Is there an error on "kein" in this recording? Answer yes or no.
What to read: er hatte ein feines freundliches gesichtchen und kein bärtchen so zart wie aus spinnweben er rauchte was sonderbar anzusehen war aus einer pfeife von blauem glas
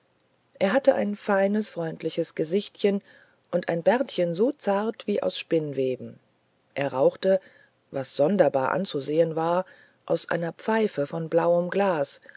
yes